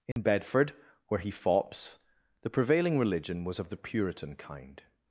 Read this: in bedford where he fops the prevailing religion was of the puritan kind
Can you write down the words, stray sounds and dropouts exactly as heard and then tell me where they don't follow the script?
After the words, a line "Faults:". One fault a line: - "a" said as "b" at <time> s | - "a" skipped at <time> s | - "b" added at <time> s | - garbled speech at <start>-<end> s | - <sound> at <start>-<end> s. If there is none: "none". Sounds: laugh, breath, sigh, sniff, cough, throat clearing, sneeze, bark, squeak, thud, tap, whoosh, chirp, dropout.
in bedford where he fops the prevailing religion was of the puritan kind
Faults:
- dropout at 0.1-0.2 s